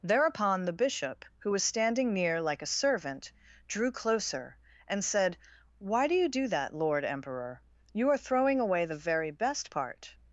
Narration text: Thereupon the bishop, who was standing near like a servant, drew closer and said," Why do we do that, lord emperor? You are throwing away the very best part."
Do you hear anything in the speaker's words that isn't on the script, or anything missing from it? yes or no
yes